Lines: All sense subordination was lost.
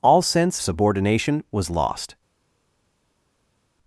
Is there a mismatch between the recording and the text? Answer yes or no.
no